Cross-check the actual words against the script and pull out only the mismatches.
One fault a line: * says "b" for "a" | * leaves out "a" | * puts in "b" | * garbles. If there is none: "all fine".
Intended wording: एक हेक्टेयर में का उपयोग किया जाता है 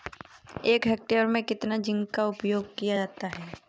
* puts in "कितना जिंक"